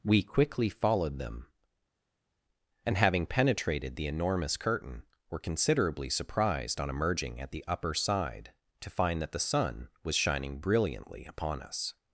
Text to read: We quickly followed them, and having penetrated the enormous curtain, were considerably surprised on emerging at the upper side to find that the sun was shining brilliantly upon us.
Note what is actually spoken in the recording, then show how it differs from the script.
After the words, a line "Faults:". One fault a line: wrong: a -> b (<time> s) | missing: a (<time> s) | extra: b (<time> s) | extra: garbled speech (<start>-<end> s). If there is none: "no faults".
We quickly followed them, and having penetrated the enormous curtain, were considerably surprised on emerging at the upper side to find that the sun was shining brilliantly upon us.
Faults:
no faults